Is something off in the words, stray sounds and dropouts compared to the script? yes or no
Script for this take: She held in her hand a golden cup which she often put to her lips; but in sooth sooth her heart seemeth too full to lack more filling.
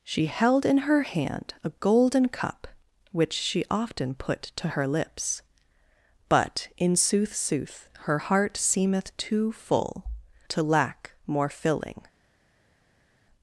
no